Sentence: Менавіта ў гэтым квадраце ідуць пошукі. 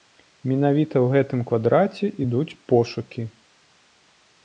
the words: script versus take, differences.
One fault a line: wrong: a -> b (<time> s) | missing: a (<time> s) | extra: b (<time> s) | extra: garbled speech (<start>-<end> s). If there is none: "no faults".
no faults